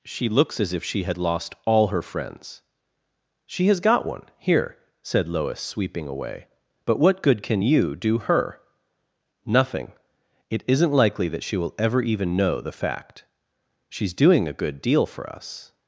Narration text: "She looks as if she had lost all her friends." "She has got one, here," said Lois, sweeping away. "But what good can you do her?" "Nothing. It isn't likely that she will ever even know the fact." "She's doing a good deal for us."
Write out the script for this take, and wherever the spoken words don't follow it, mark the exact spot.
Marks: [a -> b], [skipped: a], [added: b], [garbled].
"She looks as if she had lost all her friends." "She has got one, here," said Lois, sweeping away. "But what good can you do her?" "Nothing. It isn't likely that she will ever even know the fact." "She's doing a good deal for us."